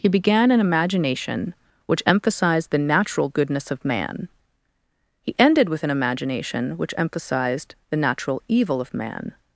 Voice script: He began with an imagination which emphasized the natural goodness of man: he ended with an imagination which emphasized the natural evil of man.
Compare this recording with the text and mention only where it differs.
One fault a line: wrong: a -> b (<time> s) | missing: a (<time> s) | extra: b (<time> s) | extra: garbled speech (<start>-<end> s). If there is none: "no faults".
missing: with (0.5 s)